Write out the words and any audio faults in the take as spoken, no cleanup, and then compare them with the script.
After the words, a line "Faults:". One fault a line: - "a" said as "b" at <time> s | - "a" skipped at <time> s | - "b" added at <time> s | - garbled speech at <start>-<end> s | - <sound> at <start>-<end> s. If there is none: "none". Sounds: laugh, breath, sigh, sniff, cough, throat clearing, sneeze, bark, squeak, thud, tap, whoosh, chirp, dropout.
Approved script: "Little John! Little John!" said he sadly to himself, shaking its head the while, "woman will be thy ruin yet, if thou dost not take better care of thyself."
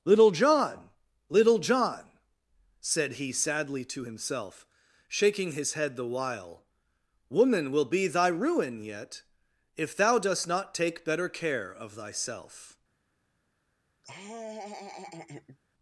"Little John! Little John!" said he sadly to himself, shaking his head the while, "woman will be thy ruin yet, if thou dost not take better care of thyself."
Faults:
- "its" said as "his" at 5.5 s
- laugh at 14.0-15.6 s